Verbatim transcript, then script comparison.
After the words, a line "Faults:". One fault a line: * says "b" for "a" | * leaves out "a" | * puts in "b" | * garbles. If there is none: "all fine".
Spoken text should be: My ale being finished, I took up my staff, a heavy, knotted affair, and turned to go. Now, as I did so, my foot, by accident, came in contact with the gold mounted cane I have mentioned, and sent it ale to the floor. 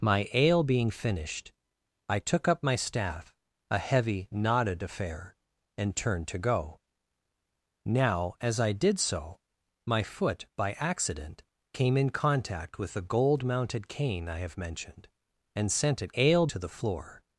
My ale being finished, I took up my staff, a heavy, knotted affair, and turned to go. Now, as I did so, my foot, by accident, came in contact with the gold mounted cane I have mentioned, and sent it ale to the floor.
Faults:
all fine